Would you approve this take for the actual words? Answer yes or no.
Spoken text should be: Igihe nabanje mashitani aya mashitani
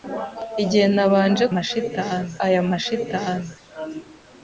yes